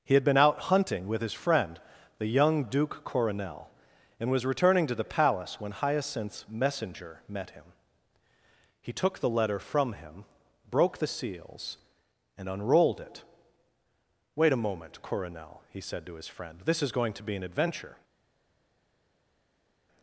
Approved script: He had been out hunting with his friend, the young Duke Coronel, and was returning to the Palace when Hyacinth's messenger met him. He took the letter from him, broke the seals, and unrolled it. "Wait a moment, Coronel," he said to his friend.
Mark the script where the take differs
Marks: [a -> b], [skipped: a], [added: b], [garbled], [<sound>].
He had been out hunting with his friend, the young Duke Coronel, and was returning to the Palace when Hyacinth's messenger met him. He took the letter from him, broke the seals, and unrolled it. "Wait a moment, Coronel," he said to his friend. [added: This is going to be an adventure]